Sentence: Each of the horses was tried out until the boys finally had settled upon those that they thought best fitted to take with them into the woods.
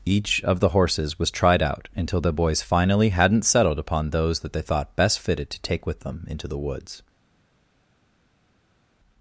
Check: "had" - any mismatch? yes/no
yes